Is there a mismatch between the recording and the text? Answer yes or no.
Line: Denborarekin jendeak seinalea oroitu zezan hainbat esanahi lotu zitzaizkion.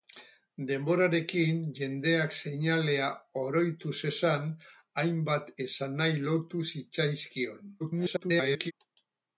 yes